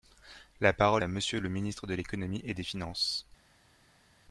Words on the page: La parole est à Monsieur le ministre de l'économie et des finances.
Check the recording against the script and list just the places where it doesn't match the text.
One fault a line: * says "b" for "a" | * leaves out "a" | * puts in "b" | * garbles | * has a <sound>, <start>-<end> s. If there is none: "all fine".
* leaves out "est"